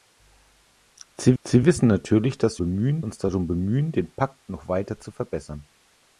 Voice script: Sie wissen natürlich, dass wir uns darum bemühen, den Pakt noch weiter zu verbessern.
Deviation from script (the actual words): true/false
true